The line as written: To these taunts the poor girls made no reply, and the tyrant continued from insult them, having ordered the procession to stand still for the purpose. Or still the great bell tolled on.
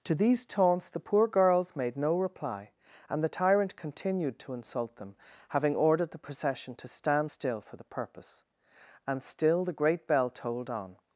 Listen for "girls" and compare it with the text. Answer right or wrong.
right